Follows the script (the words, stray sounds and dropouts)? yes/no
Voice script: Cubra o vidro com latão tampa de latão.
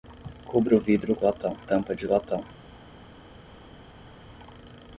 yes